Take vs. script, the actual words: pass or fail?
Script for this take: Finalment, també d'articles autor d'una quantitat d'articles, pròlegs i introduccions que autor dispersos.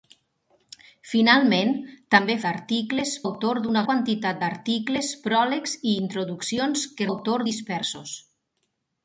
pass